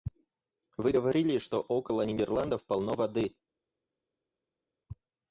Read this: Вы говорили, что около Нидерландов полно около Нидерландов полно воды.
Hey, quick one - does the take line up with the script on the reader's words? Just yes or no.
no